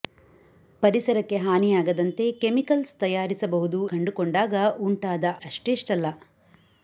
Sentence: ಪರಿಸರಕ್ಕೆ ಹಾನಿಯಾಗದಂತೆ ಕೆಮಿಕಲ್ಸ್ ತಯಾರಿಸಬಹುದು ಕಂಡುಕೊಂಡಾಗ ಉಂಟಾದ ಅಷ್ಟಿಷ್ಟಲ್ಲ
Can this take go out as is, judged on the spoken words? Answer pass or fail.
pass